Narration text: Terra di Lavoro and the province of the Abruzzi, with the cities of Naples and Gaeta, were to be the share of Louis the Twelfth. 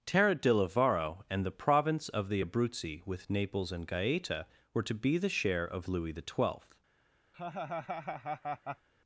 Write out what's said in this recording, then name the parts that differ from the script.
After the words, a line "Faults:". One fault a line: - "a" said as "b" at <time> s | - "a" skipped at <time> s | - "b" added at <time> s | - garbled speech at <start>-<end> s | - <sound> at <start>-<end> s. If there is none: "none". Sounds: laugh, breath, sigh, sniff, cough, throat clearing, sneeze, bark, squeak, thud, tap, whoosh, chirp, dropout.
Terra di Lavoro and the province of the Abruzzi, with Naples and Gaeta, were to be the share of Louis the Twelfth.
Faults:
- "the cities of" skipped at 3.3 s
- laugh at 7.3-8.9 s